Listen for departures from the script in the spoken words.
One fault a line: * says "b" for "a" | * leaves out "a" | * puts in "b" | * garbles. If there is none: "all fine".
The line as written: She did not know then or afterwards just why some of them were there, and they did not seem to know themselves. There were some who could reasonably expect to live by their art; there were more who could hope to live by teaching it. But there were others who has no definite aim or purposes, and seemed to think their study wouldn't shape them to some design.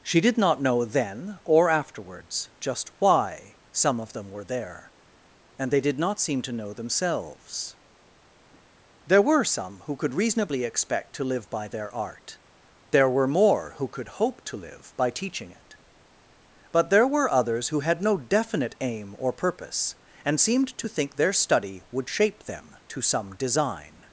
* says "had" for "has"
* says "purpose" for "purposes"
* says "would" for "wouldn't"